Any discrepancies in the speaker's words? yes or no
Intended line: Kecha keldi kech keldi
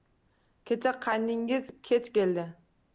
yes